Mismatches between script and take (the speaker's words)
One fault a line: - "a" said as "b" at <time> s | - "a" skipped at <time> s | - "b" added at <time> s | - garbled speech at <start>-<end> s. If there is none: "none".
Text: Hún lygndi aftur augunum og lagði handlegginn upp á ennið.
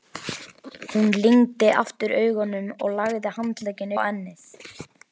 - "upp" skipped at 3.9 s